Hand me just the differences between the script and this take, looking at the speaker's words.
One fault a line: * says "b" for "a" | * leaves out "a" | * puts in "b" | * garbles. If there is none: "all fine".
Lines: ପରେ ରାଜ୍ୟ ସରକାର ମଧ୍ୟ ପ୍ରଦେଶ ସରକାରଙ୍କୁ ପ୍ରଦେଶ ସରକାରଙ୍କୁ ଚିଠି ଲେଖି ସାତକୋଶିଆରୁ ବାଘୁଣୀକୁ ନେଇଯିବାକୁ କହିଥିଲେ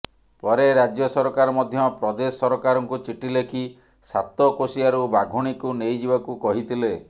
* leaves out "ପ୍ରଦେଶ ସରକାରଙ୍କୁ"